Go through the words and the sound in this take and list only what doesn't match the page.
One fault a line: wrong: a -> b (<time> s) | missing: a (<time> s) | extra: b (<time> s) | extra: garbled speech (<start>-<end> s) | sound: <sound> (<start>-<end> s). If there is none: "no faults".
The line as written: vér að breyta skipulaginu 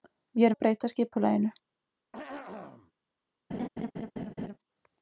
sound: throat clearing (2.1-2.9 s)
sound: laugh (3.5-4.6 s)